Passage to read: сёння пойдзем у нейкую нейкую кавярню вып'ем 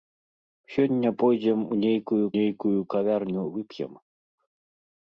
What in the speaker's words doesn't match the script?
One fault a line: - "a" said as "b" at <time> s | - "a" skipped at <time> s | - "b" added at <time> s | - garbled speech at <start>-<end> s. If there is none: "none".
none